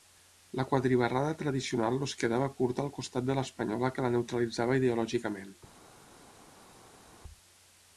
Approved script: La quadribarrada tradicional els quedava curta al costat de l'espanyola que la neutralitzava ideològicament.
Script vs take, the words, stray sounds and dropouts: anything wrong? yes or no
no